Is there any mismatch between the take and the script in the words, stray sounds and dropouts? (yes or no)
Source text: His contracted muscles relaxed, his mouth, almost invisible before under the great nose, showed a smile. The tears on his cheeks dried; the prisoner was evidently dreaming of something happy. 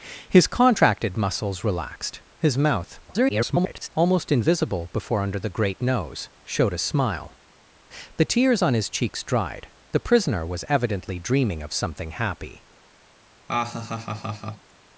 yes